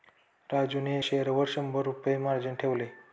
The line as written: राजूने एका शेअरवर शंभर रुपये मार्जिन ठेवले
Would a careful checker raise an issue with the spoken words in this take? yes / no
yes